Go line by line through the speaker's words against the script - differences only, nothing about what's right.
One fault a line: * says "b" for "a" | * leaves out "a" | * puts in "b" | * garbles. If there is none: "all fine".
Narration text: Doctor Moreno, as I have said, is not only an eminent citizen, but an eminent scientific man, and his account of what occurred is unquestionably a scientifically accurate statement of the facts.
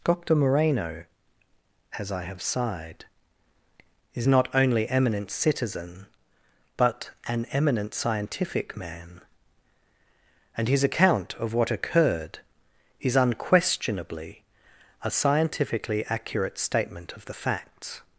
* says "sighed" for "said"
* leaves out "an"